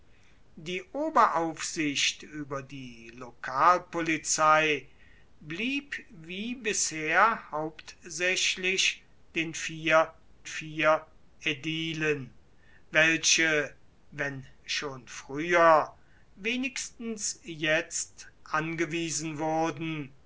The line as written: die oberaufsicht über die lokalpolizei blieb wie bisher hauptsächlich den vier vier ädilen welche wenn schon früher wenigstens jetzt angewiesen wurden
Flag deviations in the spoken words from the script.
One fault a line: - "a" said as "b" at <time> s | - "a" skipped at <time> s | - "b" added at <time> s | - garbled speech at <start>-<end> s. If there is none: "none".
none